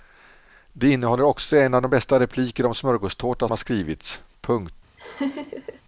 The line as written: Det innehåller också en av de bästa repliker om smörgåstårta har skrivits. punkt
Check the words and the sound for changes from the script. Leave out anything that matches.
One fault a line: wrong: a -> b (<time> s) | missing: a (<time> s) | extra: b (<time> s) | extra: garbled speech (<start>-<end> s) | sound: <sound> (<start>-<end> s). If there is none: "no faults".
sound: laugh (5.0-5.8 s)